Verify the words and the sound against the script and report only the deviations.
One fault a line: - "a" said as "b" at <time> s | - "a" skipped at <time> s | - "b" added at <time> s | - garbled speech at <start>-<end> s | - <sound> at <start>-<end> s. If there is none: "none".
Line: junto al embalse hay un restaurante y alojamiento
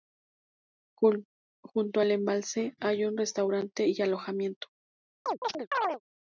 - chirp at 5.3-6.0 s